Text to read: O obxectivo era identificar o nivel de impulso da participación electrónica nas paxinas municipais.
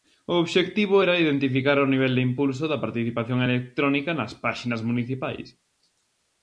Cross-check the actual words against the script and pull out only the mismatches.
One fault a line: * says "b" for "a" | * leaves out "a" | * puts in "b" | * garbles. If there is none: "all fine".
all fine